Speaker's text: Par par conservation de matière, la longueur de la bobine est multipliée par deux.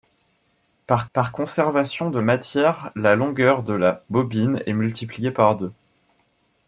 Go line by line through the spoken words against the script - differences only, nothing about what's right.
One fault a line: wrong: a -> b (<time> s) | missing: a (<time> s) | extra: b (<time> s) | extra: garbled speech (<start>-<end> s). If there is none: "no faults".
no faults